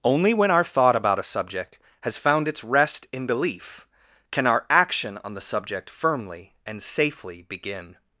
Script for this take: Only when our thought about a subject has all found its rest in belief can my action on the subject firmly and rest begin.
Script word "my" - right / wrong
wrong